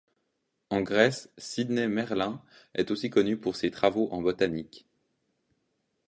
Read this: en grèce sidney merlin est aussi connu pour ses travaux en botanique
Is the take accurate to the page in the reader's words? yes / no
yes